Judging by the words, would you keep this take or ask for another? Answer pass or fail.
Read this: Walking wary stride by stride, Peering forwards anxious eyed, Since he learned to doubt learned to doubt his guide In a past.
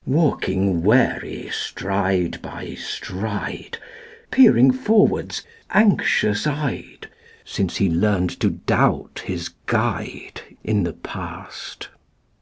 fail